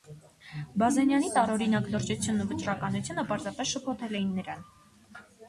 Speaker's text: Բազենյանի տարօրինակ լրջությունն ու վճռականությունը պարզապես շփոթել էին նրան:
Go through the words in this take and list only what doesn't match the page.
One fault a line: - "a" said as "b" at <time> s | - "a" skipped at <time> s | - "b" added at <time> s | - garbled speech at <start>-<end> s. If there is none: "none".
none